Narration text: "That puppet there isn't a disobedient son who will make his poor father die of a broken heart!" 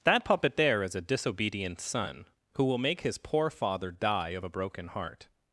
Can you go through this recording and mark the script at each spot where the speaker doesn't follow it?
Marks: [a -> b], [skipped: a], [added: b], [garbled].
"That puppet there [isn't -> is] a disobedient son who will make his poor father die of a broken heart!"